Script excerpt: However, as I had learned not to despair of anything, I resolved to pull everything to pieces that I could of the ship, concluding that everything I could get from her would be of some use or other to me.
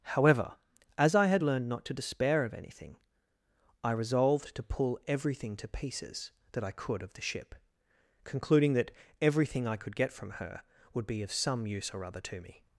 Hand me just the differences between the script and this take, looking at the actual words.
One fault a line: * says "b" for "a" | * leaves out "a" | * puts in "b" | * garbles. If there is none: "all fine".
all fine